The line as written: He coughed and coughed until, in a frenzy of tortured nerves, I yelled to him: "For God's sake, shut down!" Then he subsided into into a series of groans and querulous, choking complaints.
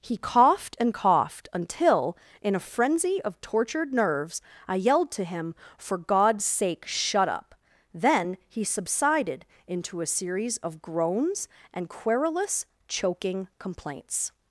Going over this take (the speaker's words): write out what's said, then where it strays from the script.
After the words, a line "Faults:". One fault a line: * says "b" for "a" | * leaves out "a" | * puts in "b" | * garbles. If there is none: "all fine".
He coughed and coughed until, in a frenzy of tortured nerves, I yelled to him: "For God's sake, shut up!" Then he subsided into a series of groans and querulous, choking complaints.
Faults:
* says "up" for "down"
* leaves out "into"